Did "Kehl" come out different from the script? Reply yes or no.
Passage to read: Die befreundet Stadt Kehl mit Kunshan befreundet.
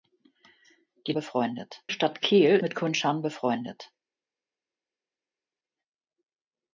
no